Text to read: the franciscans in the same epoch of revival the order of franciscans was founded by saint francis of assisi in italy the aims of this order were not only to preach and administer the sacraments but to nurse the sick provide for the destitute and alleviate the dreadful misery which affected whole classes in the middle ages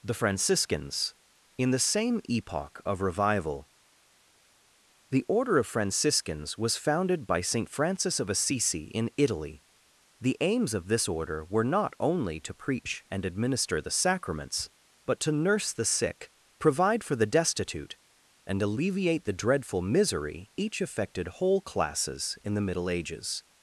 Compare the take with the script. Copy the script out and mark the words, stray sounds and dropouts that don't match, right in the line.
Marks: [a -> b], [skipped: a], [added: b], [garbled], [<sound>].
the franciscans in the same epoch of revival the order of franciscans was founded by saint francis of assisi in italy the aims of this order were not only to preach and administer the sacraments but to nurse the sick provide for the destitute and alleviate the dreadful misery [which -> each] affected whole classes in the middle ages